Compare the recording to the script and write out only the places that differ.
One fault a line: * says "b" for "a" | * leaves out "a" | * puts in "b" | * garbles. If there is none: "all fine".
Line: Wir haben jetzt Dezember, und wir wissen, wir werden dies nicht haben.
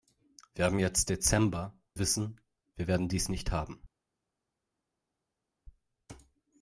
* leaves out "und wir"